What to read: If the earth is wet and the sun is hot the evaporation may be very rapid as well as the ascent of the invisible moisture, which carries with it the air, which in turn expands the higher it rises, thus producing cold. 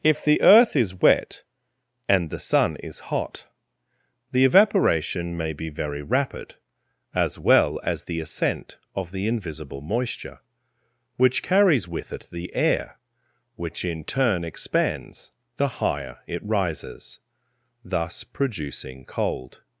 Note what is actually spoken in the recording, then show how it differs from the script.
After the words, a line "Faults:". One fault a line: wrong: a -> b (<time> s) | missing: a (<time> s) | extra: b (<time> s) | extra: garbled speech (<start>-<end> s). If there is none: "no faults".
If the earth is wet and the sun is hot the evaporation may be very rapid as well as the ascent of the invisible moisture, which carries with it the air, which in turn expands the higher it rises, thus producing cold.
Faults:
no faults